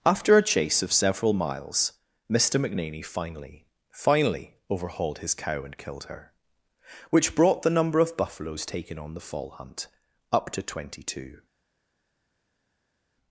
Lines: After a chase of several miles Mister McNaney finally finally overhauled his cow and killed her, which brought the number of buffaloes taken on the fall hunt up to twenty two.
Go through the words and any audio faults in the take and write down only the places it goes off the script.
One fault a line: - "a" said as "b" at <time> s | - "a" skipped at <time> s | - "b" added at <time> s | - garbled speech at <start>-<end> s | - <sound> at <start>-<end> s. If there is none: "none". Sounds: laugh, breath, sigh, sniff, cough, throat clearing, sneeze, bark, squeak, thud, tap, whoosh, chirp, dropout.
none